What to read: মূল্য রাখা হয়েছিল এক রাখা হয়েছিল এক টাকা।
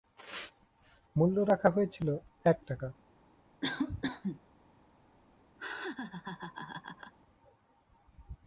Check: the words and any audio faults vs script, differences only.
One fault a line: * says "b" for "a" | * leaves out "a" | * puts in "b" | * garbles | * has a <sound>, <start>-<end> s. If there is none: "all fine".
* leaves out "রাখা হয়েছিল এক"
* has a cough, 3.6-4.4 s
* has a laugh, 5.6-7.1 s